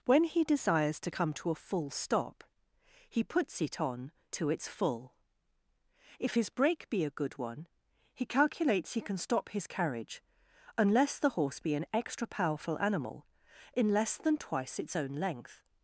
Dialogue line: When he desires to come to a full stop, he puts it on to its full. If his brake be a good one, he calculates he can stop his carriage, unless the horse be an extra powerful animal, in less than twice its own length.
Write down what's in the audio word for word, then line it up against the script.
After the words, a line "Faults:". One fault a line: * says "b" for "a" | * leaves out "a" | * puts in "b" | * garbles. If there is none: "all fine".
When he desires to come to a full stop, he puts it on to its full. If his brake be a good one, he calculates he can stop his carriage, unless the horse be an extra powerful animal, in less than twice its own length.
Faults:
all fine